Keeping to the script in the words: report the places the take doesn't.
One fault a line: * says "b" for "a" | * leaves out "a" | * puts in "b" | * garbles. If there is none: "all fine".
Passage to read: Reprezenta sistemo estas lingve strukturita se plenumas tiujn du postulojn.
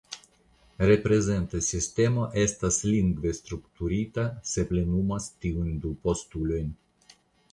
all fine